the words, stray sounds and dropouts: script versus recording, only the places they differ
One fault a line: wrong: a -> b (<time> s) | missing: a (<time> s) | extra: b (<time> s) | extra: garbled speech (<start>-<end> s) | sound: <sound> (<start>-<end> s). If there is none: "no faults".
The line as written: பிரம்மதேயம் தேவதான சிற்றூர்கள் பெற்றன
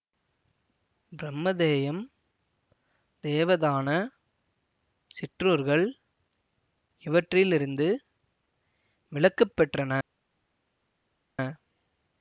extra: இவற்றிலிருந்து விலக்கு (7.0 s)